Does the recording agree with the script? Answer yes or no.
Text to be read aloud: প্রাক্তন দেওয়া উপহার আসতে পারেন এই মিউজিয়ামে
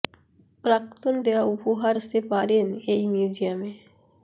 yes